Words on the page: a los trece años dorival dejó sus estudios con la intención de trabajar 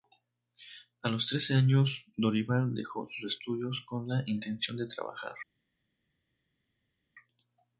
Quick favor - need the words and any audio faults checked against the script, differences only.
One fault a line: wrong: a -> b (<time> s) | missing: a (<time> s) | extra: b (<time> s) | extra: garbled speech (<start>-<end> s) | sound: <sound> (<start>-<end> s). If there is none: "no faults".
no faults